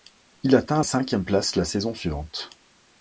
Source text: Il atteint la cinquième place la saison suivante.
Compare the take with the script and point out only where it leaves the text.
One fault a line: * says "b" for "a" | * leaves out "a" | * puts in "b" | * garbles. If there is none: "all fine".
* leaves out "la"